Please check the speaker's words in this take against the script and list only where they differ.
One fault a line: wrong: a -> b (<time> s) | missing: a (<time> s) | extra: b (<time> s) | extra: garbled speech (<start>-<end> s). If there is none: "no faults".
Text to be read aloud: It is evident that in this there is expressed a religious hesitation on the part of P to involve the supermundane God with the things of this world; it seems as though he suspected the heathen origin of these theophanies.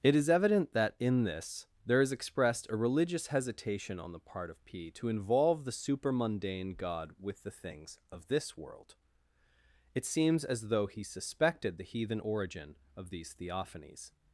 no faults